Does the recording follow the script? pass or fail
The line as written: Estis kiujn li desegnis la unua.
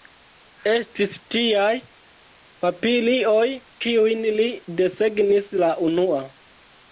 fail